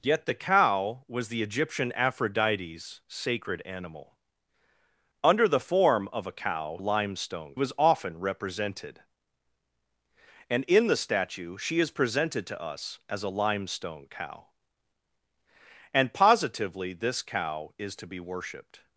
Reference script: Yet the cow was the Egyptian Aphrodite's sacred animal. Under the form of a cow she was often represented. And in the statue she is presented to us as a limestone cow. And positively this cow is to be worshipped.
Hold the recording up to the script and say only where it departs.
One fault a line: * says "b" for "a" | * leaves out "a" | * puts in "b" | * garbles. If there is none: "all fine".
* says "limestone" for "she"